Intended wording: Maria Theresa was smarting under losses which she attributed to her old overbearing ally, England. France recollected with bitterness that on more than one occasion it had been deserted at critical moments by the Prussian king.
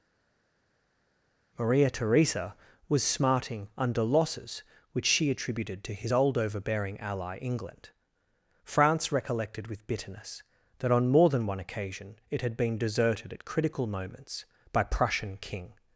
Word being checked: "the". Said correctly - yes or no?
no